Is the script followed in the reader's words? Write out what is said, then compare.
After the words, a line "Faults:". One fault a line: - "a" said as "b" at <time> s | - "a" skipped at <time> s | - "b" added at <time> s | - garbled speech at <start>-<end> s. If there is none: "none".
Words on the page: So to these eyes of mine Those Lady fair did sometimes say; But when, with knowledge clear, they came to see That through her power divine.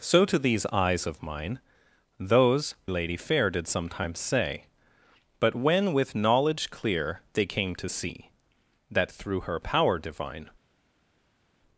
So to these eyes of mine Those Lady fair did sometimes say; But when, with knowledge clear, they came to see That through her power divine.
Faults:
none